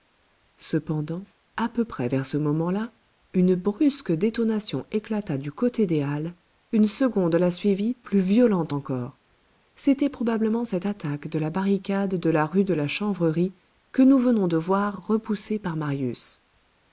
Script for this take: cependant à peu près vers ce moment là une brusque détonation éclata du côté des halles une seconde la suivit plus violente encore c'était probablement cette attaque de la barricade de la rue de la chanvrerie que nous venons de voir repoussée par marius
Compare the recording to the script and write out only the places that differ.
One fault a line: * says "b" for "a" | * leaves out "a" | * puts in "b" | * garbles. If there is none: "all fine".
all fine